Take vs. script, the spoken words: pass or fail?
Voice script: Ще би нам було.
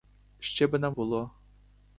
pass